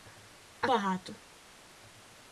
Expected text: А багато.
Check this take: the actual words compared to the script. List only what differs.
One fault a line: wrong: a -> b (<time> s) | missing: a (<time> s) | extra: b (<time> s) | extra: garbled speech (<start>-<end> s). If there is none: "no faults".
no faults